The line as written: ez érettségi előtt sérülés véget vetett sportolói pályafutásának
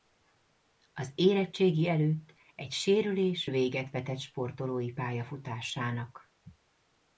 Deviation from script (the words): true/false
true